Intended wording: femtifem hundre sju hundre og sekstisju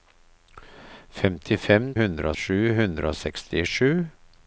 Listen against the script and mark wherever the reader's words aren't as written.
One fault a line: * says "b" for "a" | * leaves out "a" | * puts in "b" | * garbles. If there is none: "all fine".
all fine